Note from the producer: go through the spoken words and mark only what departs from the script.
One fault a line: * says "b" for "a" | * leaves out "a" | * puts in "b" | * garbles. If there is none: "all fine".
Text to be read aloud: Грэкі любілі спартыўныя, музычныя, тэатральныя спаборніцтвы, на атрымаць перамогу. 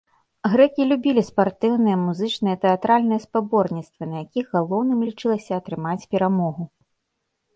* puts in "якіх галоўным лічылася"